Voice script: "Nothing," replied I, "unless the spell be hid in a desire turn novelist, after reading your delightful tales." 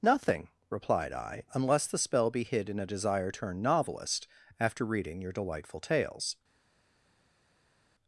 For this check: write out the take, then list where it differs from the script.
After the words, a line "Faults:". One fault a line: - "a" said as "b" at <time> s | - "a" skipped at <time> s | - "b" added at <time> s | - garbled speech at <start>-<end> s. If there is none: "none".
"Nothing," replied I, "unless the spell be hid in a desire turn novelist, after reading your delightful tales."
Faults:
none